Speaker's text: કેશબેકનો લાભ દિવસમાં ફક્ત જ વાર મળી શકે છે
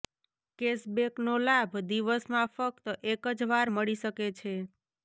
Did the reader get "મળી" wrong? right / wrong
right